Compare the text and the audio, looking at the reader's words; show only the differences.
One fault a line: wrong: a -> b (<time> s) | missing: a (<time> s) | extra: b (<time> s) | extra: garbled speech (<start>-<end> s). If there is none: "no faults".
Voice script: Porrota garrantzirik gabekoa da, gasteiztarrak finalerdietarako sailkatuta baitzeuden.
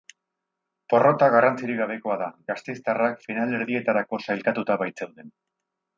no faults